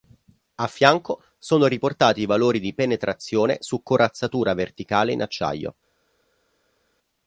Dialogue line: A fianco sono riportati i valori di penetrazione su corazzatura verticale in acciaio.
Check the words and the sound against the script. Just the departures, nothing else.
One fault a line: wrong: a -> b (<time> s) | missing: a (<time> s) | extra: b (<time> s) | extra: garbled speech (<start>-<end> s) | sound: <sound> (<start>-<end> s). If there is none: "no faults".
no faults